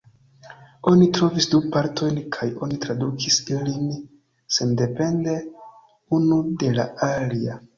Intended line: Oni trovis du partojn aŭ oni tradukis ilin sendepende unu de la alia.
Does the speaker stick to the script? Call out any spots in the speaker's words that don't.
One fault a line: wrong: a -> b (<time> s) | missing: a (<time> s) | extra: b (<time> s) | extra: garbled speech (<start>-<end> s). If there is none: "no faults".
wrong: aŭ -> kaj (2.4 s)